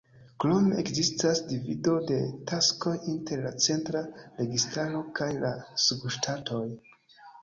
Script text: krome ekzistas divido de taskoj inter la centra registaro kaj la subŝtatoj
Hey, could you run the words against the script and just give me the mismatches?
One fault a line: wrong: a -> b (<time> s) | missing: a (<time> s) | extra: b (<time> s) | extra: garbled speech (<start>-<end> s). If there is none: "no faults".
no faults